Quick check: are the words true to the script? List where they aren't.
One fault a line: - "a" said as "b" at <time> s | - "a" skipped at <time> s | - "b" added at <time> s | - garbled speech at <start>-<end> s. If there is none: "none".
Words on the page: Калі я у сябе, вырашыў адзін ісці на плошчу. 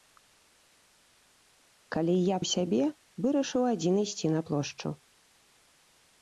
none